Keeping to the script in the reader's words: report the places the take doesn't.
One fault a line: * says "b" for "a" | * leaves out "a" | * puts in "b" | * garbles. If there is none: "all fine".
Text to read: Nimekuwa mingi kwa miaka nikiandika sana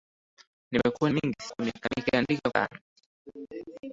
all fine